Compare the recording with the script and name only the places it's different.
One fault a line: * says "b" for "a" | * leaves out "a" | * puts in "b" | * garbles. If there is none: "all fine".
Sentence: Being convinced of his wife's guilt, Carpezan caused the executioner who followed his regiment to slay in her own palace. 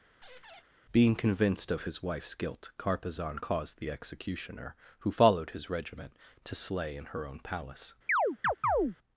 all fine